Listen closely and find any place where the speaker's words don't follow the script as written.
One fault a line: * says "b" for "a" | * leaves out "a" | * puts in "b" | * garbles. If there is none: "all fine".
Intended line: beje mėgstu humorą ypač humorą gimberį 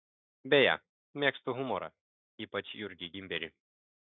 * says "jurgį" for "humorą"